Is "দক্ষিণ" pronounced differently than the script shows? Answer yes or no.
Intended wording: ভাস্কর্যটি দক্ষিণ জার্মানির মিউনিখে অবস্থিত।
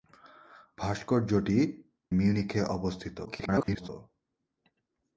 yes